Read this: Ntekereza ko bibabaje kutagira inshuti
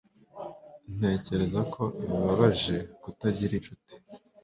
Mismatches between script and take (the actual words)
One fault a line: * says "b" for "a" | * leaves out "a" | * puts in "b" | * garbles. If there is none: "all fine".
all fine